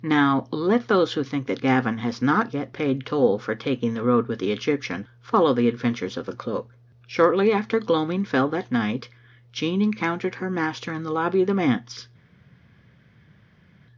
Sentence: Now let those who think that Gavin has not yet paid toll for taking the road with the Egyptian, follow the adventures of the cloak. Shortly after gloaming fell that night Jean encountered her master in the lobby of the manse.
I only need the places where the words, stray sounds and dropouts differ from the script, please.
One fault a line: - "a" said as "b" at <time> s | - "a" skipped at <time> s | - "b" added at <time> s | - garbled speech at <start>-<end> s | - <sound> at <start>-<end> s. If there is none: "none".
none